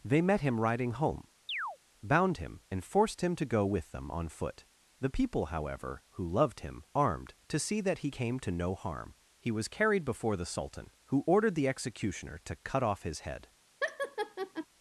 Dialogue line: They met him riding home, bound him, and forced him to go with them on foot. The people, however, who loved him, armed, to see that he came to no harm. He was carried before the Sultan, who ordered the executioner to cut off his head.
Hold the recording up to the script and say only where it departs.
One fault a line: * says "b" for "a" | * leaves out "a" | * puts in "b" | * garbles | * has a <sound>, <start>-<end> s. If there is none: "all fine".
* has a chirp, 1.5-1.8 s
* has a laugh, 13.8-14.7 s